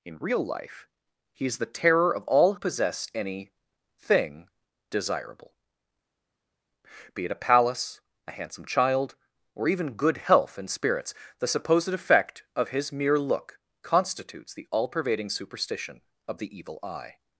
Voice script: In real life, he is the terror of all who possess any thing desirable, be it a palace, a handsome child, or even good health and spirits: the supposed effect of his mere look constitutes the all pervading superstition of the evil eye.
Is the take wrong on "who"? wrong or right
wrong